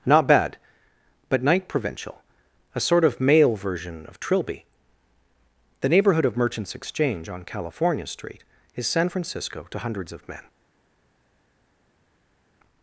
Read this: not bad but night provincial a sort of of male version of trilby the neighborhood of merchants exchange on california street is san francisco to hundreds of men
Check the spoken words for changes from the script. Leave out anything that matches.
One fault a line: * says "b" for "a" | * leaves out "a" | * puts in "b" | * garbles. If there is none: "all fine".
* leaves out "of"